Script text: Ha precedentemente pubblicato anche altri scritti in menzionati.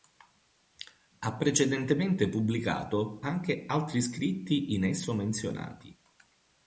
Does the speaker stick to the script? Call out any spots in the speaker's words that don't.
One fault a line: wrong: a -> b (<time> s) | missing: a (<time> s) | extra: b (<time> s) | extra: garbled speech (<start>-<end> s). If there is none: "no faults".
extra: esso (4.8 s)